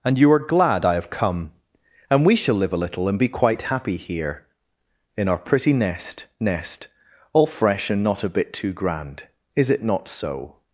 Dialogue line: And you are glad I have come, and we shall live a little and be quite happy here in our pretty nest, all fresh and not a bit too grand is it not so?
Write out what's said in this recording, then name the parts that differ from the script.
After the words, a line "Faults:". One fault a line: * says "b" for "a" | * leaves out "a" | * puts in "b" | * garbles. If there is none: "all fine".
And you are glad I have come, and we shall live a little and be quite happy here in our pretty nest nest, all fresh and not a bit too grand is it not so?
Faults:
* puts in "nest"